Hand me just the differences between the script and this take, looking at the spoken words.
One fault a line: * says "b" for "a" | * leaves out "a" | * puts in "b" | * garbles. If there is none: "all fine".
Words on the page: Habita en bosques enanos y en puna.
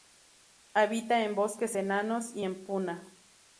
all fine